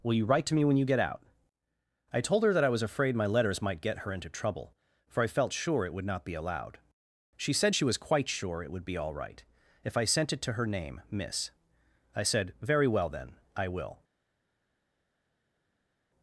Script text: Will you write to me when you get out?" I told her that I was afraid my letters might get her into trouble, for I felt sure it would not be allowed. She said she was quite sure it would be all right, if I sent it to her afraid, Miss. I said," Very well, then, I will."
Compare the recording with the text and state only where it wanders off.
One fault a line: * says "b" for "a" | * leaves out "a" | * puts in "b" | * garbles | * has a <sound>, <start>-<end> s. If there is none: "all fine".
* says "name" for "afraid"